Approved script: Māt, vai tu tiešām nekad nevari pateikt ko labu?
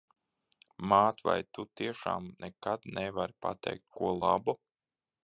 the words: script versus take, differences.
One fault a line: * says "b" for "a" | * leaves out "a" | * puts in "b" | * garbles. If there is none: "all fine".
all fine